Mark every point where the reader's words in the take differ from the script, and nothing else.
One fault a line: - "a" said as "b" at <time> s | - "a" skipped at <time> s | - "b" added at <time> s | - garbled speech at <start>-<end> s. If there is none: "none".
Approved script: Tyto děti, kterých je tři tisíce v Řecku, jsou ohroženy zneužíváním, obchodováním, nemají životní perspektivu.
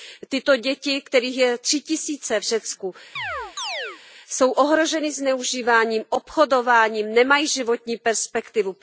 none